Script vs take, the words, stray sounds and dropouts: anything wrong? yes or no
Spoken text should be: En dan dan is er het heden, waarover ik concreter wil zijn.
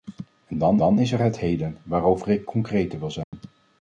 yes